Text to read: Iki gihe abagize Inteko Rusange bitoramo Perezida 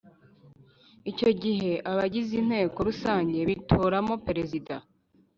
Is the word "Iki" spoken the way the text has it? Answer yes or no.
no